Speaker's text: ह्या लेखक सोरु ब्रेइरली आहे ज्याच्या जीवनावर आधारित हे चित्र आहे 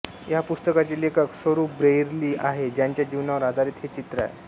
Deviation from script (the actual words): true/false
true